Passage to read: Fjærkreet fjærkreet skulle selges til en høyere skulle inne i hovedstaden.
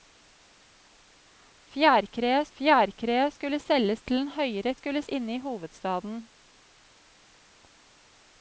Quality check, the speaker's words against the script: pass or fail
pass